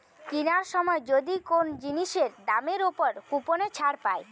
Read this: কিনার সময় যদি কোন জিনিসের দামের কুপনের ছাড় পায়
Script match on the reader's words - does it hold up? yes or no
no